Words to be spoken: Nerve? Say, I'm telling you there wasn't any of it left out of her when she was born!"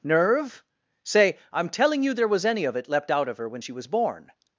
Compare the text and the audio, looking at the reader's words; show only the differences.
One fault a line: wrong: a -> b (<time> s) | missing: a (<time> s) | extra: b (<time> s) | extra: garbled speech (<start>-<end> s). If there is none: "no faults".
wrong: wasn't -> was (2.3 s)
wrong: left -> leapt (2.9 s)